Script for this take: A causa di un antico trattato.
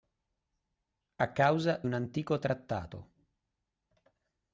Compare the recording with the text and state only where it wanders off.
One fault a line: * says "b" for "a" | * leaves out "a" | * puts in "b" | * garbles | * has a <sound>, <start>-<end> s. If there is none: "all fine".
* leaves out "di"